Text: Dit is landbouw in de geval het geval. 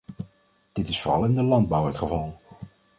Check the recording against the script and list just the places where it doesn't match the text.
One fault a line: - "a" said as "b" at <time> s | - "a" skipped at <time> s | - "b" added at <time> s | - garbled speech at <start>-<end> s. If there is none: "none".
- "landbouw" said as "vooral" at 1.0 s
- "geval" said as "landbouw" at 1.4 s